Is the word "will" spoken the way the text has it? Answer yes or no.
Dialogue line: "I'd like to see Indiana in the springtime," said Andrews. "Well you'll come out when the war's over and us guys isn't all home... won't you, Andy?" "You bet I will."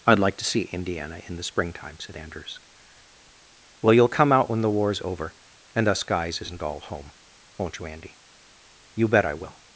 yes